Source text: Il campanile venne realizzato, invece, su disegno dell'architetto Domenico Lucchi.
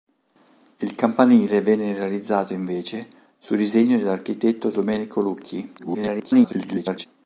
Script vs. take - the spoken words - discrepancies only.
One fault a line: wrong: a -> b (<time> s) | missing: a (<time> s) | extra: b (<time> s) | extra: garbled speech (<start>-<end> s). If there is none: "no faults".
extra: garbled speech (5.8-7.1 s)